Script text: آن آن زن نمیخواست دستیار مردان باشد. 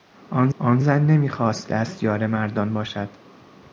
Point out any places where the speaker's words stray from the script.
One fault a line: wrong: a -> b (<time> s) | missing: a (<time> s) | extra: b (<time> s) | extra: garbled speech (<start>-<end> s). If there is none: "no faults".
no faults